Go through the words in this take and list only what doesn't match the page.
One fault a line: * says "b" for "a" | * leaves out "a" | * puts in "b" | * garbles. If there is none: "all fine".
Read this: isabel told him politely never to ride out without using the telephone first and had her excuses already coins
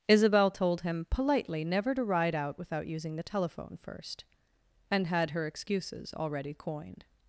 * says "coined" for "coins"